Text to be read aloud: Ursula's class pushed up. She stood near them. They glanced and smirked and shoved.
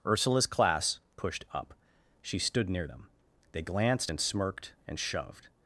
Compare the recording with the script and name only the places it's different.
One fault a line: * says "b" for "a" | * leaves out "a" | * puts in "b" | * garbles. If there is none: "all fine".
all fine